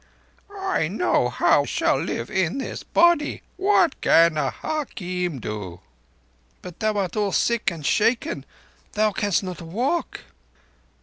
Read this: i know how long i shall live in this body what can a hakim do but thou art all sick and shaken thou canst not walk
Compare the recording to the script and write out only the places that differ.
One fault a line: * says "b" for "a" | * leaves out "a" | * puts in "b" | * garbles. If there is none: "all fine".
* leaves out "long i"